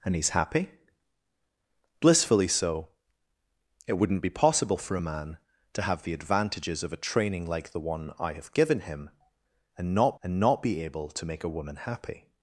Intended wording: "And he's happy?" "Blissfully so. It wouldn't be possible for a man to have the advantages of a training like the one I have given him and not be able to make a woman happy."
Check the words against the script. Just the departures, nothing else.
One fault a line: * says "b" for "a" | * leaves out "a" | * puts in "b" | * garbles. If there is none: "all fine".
* puts in "and not"